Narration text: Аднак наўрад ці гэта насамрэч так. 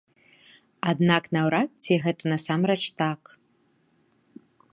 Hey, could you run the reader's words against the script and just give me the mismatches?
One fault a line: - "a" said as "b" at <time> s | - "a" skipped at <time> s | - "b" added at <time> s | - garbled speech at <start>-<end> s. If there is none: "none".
none